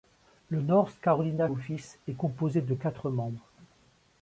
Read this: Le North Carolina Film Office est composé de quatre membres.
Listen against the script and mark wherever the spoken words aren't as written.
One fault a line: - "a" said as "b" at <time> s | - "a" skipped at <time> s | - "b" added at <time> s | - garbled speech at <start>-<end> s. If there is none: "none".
- "Film" skipped at 1.5 s